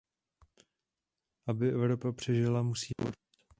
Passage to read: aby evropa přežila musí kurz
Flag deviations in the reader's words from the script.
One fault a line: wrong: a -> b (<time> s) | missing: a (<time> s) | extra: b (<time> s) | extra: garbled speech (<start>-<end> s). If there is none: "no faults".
no faults